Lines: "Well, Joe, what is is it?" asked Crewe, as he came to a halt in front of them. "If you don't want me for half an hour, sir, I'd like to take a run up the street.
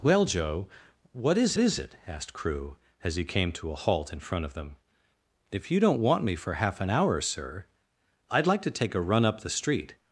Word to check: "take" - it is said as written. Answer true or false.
true